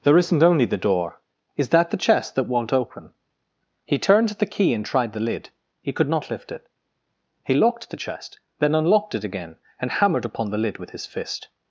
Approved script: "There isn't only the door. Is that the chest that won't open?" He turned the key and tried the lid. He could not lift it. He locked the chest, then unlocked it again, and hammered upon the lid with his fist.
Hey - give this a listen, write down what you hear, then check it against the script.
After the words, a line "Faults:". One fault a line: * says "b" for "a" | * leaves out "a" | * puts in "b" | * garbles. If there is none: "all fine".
"There isn't only the door. Is that the chest that won't open?" He turned the key and tried the lid. He could not lift it. He locked the chest, then unlocked it again, and hammered upon the lid with his fist.
Faults:
all fine